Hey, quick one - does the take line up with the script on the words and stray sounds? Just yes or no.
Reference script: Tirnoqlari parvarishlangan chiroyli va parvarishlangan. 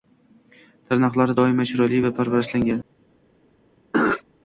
no